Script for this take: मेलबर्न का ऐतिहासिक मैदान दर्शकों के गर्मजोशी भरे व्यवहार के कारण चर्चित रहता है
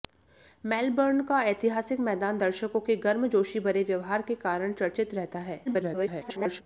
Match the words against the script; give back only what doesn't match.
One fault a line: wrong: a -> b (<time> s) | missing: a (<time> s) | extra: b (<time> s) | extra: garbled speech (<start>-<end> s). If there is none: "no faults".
extra: garbled speech (5.7-6.6 s)